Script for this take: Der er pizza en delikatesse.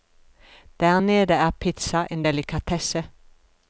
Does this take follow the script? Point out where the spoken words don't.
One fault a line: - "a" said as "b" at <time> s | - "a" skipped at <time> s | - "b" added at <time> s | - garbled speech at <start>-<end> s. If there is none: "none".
- "nede" added at 1.0 s